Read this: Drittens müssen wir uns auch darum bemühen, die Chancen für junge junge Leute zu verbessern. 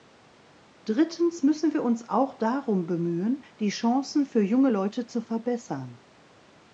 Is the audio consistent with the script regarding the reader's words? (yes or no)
no